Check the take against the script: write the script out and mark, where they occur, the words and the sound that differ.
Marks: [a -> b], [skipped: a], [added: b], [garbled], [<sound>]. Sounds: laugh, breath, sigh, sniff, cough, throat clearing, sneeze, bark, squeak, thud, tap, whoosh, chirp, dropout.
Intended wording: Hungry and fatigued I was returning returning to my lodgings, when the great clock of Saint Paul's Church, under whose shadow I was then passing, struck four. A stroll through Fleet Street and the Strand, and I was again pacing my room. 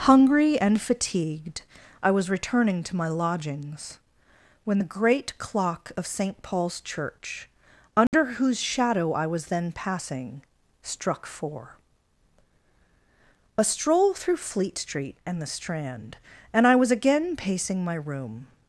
Hungry and fatigued I was returning [skipped: returning] to my lodgings, when the great clock of Saint Paul's Church, under [dropout] whose shadow I was then passing, struck four. A stroll through Fleet Street and the Strand, and I was again pacing my room.